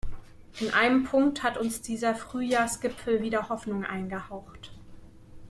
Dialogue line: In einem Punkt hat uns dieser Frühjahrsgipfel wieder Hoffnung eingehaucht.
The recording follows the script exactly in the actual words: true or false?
true